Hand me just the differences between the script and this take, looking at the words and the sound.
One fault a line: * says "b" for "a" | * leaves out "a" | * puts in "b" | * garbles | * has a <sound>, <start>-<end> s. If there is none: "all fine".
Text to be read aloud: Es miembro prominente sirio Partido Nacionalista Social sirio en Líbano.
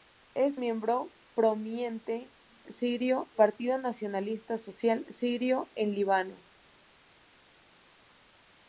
all fine